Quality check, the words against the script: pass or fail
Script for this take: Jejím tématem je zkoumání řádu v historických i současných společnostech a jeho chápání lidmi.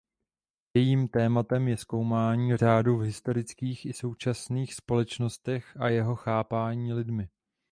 pass